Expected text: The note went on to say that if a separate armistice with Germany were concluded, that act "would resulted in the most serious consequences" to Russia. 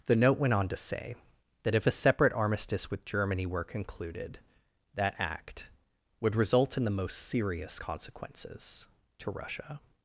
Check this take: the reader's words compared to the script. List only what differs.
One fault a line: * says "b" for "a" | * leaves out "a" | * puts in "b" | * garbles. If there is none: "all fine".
* says "result" for "resulted"